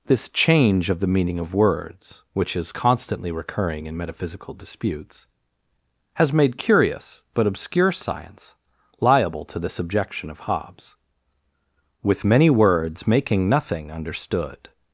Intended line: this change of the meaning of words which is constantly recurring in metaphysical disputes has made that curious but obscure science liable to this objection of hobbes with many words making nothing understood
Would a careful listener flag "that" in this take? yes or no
yes